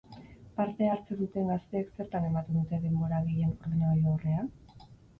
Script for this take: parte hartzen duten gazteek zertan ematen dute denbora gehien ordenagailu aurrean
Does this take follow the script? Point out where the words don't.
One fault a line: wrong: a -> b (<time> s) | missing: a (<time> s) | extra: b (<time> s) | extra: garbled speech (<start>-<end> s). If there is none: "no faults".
no faults